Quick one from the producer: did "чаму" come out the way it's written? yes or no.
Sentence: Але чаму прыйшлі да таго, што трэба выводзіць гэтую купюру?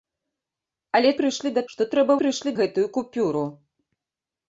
no